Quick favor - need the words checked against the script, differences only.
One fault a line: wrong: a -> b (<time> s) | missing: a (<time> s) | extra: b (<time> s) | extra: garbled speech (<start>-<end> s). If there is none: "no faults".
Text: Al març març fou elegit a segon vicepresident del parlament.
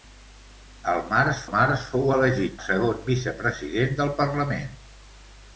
no faults